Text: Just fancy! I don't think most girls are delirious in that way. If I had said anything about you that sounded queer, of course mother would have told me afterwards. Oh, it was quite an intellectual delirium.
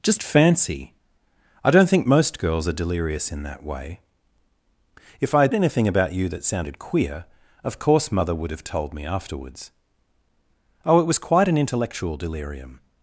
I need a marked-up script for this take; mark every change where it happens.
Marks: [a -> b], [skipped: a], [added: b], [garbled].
Just fancy! I don't think most girls are delirious in that way. If I had [skipped: said] anything about you that sounded queer, of course mother would have told me afterwards. Oh, it was quite an intellectual delirium.